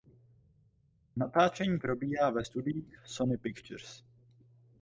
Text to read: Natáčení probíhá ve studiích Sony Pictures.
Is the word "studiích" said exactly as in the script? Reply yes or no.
yes